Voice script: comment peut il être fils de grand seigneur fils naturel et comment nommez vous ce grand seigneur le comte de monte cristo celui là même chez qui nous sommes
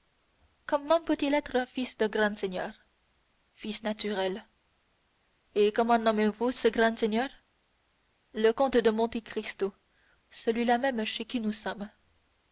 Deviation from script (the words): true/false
false